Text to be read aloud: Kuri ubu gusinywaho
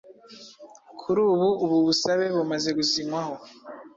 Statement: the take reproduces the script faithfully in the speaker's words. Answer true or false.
false